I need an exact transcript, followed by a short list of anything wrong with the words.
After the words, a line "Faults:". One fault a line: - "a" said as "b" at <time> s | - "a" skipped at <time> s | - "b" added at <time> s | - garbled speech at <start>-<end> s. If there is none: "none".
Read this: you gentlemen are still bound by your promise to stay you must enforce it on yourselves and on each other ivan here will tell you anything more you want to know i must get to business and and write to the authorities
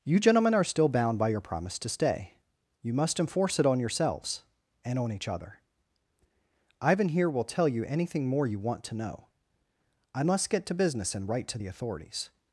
you gentlemen are still bound by your promise to stay you must enforce it on yourselves and on each other ivan here will tell you anything more you want to know i must get to business and write to the authorities
Faults:
- "and" skipped at 11.3 s